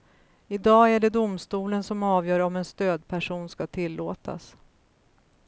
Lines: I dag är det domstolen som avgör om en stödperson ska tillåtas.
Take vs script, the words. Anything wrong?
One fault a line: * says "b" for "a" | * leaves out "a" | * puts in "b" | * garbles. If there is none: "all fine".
all fine